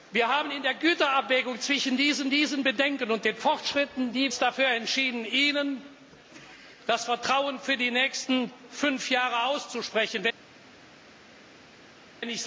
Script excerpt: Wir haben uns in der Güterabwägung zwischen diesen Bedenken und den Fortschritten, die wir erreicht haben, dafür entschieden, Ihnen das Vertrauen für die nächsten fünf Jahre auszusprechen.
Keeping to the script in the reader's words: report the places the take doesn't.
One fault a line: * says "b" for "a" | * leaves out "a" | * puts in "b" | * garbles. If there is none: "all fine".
* puts in "diesen"
* leaves out "wir erreicht haben"